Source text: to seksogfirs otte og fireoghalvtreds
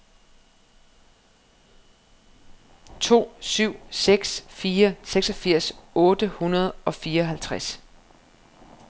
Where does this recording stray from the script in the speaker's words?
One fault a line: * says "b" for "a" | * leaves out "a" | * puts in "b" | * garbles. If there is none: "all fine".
* puts in "syv seks fire"
* puts in "hundrede"